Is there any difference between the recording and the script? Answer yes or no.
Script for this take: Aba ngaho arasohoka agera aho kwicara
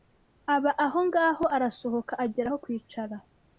yes